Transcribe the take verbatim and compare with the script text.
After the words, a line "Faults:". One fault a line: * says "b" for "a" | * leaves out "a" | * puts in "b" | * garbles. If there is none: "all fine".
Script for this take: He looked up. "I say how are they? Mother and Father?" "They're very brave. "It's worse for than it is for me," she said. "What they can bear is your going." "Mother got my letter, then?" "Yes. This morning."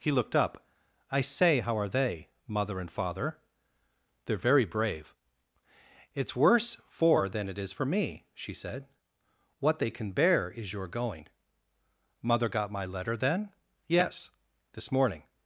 He looked up. "I say how are they? Mother and Father?" "They're very brave. "It's worse for than it is for me," she said. "What they can bear is your going." "Mother got my letter, then?" "Yes. This morning."
Faults:
all fine